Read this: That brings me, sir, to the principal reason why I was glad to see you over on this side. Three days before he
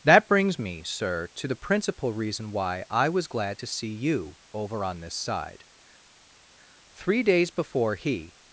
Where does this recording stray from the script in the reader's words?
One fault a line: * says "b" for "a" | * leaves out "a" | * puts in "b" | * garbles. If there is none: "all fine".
all fine